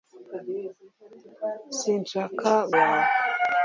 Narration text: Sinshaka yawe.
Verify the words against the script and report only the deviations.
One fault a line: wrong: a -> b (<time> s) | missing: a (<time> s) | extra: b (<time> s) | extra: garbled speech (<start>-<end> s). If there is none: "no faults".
no faults